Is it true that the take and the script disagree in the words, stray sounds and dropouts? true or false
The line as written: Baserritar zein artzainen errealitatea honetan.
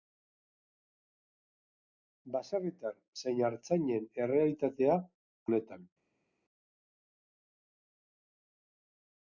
false